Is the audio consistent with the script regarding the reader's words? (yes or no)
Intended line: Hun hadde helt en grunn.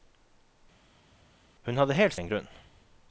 yes